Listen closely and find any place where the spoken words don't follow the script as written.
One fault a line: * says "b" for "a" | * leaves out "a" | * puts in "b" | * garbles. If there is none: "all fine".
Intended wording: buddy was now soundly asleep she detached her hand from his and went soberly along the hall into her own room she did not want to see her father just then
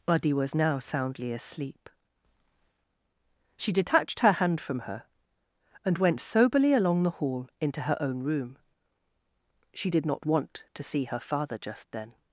* says "her" for "his"